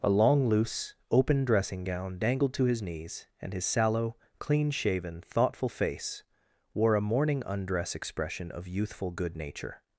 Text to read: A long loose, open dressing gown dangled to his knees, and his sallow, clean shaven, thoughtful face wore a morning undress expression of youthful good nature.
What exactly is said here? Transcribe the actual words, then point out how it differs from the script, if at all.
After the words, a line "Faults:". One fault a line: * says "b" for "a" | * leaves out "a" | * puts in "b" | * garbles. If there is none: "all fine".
A long loose, open dressing gown dangled to his knees, and his sallow, clean shaven, thoughtful face wore a morning undress expression of youthful good nature.
Faults:
all fine